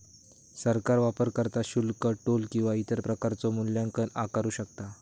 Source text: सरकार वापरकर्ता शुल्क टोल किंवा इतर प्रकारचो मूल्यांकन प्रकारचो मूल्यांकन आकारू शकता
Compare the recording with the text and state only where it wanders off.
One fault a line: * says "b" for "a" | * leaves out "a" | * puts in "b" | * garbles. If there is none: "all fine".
* leaves out "प्रकारचो मूल्यांकन"